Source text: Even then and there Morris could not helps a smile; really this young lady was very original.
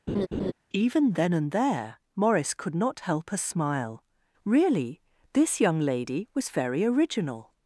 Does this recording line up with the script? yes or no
no